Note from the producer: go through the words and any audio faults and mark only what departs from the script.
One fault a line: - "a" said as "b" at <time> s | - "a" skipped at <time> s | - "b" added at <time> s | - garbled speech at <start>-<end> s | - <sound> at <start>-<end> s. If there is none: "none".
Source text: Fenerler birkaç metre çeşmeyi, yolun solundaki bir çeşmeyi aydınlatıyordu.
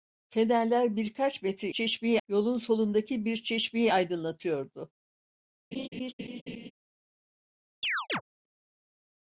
- laugh at 5.7-6.7 s
- chirp at 7.8-8.2 s